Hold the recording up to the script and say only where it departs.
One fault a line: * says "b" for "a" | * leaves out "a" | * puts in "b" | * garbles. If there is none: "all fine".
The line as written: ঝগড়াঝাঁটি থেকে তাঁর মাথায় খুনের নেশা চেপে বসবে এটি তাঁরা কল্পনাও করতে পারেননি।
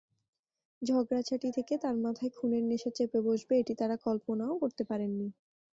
all fine